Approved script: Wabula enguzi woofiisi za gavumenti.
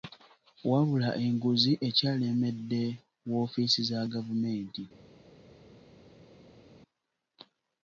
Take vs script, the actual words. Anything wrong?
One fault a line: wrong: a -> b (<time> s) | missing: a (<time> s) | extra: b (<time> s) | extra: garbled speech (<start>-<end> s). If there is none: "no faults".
extra: ekyalemedde (1.9 s)